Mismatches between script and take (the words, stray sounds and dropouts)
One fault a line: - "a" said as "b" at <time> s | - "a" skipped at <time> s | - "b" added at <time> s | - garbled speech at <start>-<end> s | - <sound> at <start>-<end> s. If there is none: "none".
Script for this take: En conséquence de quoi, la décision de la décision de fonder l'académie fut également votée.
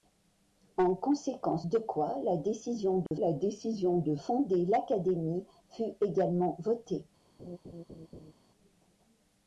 - dropout at 3.1-3.1 s
- laugh at 7.4-8.3 s